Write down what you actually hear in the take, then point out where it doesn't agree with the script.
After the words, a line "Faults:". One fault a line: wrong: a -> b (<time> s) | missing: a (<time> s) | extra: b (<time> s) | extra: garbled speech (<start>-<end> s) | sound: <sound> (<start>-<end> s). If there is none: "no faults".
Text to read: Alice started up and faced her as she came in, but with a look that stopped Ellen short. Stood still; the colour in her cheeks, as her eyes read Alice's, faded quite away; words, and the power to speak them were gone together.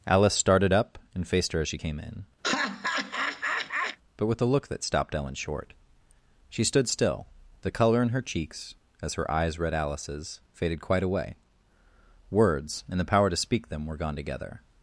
Alice started up and faced her as she came in, but with a look that stopped Ellen short. She stood still; the colour in her cheeks, as her eyes read Alice's, faded quite away; words, and the power to speak them were gone together.
Faults:
sound: laugh (2.4-4.0 s)
extra: She (6.5 s)